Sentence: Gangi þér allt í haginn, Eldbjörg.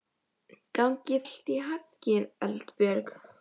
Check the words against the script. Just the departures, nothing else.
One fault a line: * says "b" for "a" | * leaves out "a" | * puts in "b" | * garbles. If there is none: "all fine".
* leaves out "þér"